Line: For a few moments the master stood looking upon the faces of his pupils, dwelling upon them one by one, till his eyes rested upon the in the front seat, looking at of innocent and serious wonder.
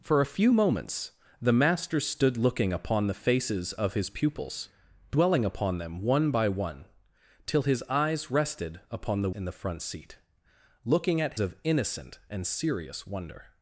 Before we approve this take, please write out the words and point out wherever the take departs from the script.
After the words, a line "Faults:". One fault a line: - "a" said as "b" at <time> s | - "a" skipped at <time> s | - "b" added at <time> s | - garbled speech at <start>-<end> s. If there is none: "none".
For a few moments the master stood looking upon the faces of his pupils, dwelling upon them one by one, till his eyes rested upon the in the front seat, looking at of innocent and serious wonder.
Faults:
none